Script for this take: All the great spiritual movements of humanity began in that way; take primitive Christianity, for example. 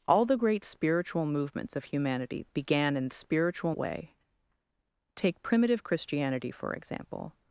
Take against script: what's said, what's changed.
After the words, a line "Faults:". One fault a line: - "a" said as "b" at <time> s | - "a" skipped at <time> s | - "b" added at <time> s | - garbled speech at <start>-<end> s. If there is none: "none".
All the great spiritual movements of humanity began in spiritual way; take primitive Christianity, for example.
Faults:
- "that" said as "spiritual" at 3.1 s